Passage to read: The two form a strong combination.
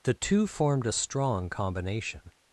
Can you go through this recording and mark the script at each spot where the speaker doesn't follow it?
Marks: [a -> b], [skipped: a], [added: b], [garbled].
The two [form -> formed] a strong combination.